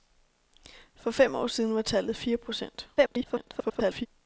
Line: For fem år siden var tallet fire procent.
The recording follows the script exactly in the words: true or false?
false